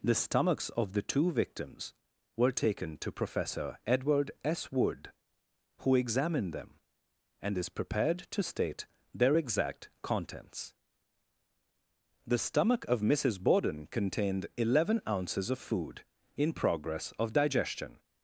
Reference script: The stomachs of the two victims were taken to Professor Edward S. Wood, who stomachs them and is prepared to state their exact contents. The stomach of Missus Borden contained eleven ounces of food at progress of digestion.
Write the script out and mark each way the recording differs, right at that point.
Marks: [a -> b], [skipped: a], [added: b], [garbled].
The stomachs of the two victims were taken to Professor Edward S. Wood, who [stomachs -> examined] them and is prepared to state their exact contents. The stomach of Missus Borden contained eleven ounces of food [at -> in] progress of digestion.